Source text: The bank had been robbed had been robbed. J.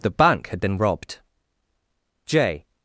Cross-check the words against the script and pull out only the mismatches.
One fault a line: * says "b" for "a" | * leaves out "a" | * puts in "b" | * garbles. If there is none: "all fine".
* leaves out "had been robbed"